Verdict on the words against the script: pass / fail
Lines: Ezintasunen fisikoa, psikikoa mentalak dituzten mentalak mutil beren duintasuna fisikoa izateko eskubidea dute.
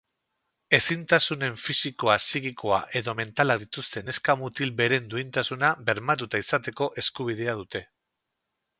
fail